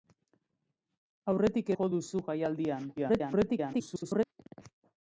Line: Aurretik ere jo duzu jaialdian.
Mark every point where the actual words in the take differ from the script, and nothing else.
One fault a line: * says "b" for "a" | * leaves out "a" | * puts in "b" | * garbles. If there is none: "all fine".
* leaves out "ere"
* garbles